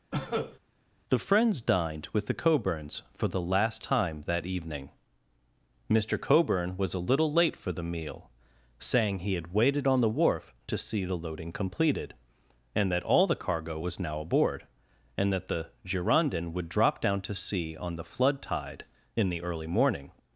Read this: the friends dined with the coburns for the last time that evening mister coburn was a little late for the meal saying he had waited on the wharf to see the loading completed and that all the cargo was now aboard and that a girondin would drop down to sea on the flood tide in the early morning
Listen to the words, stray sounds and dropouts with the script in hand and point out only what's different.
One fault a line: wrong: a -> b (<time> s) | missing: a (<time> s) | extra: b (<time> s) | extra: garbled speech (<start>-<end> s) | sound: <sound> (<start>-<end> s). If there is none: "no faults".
sound: cough (0.1-0.6 s)
wrong: a -> the (15.5 s)